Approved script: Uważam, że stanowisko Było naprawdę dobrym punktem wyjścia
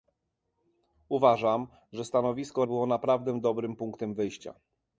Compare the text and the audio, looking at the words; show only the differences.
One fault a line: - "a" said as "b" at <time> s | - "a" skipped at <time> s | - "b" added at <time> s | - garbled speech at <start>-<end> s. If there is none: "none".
none